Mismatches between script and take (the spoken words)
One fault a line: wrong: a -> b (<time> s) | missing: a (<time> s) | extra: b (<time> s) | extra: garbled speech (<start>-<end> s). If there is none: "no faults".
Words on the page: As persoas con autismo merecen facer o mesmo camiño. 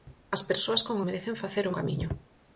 missing: autismo (1.0 s)
missing: mesmo (1.7 s)